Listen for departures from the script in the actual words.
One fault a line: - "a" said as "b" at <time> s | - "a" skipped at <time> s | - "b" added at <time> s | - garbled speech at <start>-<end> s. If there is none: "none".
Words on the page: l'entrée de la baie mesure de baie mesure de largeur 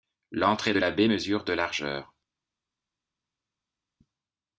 - "baie mesure de" skipped at 1.5 s